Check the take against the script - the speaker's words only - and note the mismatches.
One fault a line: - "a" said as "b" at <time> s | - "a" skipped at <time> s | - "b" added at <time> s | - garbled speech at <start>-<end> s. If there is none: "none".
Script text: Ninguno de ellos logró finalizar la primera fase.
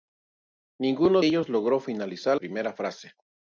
- "de" skipped at 1.2 s
- "la" skipped at 2.4 s